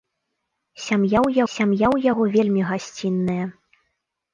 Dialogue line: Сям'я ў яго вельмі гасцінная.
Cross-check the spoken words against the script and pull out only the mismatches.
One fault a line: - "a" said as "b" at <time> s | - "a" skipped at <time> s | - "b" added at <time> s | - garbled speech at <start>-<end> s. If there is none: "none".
- "сям'я ў" added at 1.5 s